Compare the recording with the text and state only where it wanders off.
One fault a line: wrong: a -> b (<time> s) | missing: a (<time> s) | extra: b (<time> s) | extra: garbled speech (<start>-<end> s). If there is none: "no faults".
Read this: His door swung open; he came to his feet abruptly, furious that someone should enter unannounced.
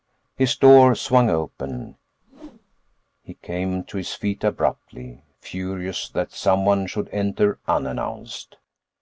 no faults